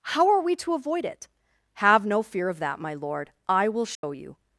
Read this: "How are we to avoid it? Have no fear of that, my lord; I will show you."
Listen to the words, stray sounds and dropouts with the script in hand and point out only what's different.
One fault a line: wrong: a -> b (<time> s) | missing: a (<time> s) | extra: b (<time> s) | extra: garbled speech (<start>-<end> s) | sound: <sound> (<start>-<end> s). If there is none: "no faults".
sound: dropout (3.9-4.0 s)